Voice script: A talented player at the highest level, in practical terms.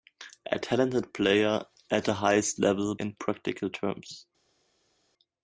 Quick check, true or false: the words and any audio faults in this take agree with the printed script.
true